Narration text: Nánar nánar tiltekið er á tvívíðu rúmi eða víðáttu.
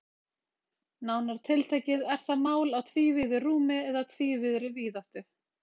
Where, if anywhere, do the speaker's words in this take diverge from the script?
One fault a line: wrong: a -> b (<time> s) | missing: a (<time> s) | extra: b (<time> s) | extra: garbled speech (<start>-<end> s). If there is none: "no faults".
missing: nánar (1.4 s)
extra: það mál (2.3 s)
extra: tvívíðri (4.1 s)